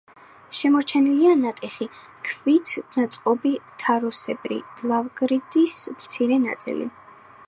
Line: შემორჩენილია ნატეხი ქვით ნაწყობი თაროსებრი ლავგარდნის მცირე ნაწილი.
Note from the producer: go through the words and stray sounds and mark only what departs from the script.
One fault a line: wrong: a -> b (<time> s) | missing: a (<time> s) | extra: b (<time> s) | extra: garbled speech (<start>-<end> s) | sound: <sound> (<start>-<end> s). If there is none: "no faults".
no faults